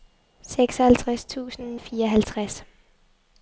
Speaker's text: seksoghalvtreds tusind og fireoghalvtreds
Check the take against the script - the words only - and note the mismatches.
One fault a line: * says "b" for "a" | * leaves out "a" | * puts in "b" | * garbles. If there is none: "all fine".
all fine